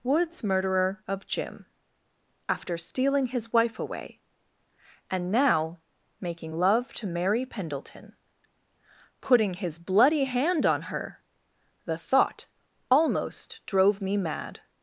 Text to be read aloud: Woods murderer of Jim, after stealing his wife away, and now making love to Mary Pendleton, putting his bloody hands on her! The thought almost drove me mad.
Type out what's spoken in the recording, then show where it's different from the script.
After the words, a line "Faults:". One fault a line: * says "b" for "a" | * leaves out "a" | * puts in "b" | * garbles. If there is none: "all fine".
Woods murderer of Jim, after stealing his wife away, and now making love to Mary Pendleton, putting his bloody hand on her! The thought almost drove me mad.
Faults:
* says "hand" for "hands"